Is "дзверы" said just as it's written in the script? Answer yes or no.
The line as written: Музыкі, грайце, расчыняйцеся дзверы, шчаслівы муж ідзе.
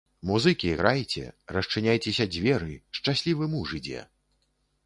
yes